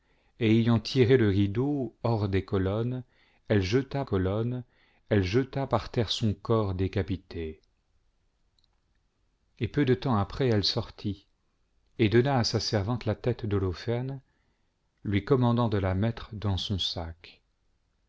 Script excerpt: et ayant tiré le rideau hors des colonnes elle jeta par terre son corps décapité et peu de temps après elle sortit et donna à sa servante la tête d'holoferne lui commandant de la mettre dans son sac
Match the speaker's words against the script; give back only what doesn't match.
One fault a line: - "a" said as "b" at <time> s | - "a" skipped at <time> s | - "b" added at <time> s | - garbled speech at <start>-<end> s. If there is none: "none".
- "colonnes elle jeta" added at 4.0 s